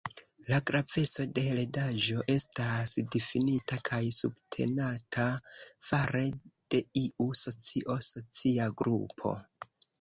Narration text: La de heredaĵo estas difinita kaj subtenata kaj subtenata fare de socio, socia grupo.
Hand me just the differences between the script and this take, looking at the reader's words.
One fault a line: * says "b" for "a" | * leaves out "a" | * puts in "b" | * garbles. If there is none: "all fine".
* puts in "graveco"
* leaves out "kaj subtenata"
* puts in "iu"